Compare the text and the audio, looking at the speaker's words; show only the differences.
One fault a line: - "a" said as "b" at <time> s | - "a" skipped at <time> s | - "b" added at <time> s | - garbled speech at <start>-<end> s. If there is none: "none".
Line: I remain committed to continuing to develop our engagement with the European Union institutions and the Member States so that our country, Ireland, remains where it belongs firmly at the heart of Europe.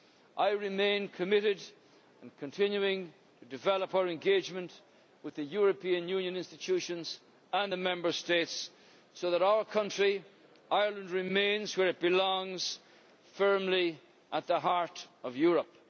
none